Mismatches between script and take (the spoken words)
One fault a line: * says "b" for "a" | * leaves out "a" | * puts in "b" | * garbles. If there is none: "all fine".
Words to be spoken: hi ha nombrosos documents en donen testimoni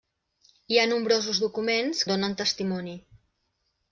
all fine